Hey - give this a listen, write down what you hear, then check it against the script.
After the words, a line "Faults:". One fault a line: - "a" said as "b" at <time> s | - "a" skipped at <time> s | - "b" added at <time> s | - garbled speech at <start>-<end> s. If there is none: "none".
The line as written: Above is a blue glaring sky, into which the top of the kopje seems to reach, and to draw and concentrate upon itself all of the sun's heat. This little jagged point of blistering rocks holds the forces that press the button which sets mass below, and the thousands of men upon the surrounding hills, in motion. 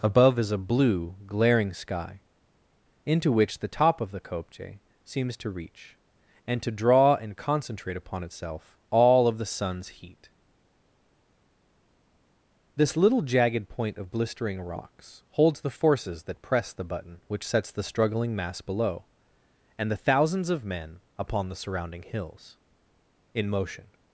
Above is a blue glaring sky, into which the top of the kopje seems to reach, and to draw and concentrate upon itself all of the sun's heat. This little jagged point of blistering rocks holds the forces that press the button which sets the struggling mass below, and the thousands of men upon the surrounding hills, in motion.
Faults:
- "the struggling" added at 17.7 s